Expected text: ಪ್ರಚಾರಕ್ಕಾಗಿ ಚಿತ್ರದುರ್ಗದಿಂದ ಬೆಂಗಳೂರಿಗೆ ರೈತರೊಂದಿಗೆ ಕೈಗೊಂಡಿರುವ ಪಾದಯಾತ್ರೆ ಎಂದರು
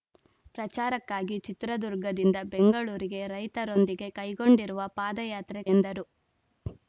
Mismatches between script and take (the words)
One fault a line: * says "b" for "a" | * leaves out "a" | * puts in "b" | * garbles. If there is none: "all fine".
all fine